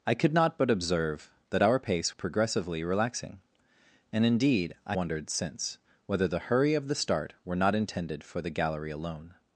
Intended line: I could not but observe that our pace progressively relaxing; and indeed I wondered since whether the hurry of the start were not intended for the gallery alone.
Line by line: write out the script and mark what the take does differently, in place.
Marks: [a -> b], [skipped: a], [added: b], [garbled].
I could not but observe that our pace progressively relaxing; and indeed I wondered since whether the hurry of the start were not intended for the gallery alone.